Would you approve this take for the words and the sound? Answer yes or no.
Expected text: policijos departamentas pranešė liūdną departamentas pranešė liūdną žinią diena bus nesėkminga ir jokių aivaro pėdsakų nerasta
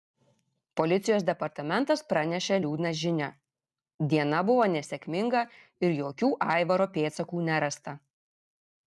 no